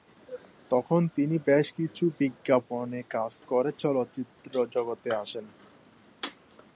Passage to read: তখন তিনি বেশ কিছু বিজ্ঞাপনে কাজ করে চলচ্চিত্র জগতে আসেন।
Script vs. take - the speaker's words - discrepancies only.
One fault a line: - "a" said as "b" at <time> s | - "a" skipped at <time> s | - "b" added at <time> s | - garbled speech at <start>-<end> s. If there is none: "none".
none